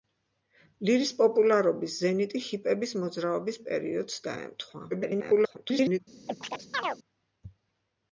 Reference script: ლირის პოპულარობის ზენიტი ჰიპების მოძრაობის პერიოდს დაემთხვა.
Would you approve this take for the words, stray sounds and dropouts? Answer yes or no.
no